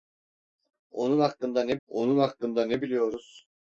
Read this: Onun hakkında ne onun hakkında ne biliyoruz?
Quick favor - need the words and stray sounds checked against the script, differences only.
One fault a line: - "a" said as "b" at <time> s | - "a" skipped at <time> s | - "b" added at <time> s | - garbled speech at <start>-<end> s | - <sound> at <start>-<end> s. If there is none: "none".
none